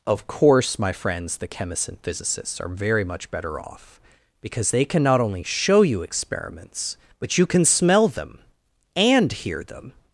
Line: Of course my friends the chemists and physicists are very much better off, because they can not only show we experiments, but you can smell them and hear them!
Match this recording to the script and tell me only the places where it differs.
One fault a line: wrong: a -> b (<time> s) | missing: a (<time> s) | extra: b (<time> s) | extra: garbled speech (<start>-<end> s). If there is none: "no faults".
wrong: we -> you (5.8 s)